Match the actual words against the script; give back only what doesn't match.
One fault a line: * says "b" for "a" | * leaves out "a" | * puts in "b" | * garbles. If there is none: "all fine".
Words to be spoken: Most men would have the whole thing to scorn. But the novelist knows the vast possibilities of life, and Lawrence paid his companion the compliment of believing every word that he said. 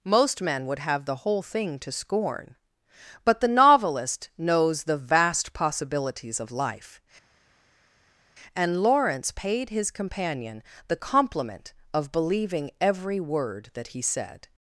all fine